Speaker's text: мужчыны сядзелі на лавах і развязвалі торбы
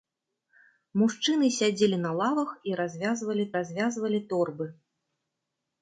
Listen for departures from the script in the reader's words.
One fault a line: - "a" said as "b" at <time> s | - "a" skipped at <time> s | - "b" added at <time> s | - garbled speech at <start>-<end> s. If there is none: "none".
- "развязвалі" added at 3.6 s